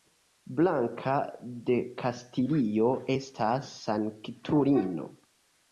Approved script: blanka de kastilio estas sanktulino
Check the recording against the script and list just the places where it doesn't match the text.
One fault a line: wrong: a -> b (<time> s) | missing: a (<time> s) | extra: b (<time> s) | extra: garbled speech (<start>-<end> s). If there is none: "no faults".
no faults